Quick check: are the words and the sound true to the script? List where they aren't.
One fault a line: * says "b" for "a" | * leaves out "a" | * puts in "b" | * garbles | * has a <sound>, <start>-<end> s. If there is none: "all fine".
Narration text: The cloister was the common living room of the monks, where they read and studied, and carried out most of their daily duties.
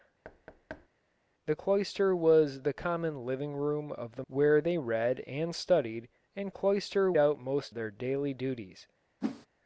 * has a thud, 0.2-0.9 s
* leaves out "monks"
* says "cloister" for "carried"
* leaves out "of"
* has a whoosh, 9.2-9.5 s